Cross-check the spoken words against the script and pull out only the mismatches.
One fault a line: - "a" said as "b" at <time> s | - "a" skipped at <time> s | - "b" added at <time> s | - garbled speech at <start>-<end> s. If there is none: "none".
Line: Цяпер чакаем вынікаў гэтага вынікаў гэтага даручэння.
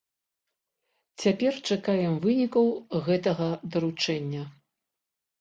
- "вынікаў гэтага" skipped at 3.5 s